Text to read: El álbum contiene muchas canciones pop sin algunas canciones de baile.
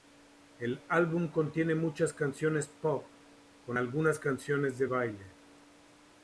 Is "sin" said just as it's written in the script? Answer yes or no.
no